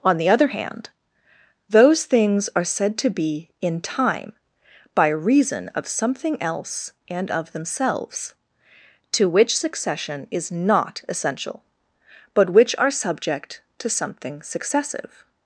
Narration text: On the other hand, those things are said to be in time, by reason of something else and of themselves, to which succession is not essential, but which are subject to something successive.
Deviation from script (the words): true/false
false